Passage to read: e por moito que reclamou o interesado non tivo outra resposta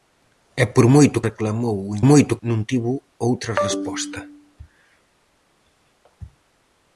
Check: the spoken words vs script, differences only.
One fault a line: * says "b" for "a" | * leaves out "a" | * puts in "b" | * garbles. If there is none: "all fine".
* leaves out "que"
* says "moito" for "interesado"